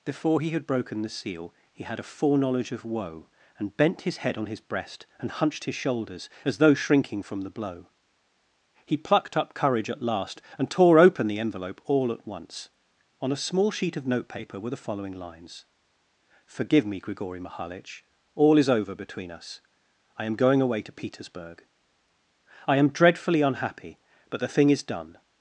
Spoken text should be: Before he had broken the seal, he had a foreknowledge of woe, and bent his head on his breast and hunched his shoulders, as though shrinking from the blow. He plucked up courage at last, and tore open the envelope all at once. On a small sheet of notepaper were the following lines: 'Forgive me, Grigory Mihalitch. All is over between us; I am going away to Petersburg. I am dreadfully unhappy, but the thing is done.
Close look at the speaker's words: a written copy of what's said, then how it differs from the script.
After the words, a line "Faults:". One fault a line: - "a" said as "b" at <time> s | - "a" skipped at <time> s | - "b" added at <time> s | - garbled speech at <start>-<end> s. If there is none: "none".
Before he had broken the seal, he had a foreknowledge of woe, and bent his head on his breast and hunched his shoulders, as though shrinking from the blow. He plucked up courage at last, and tore open the envelope all at once. On a small sheet of notepaper were the following lines: 'Forgive me, Grigory Mihalitch. All is over between us; I am going away to Petersburg. I am dreadfully unhappy, but the thing is done.
Faults:
none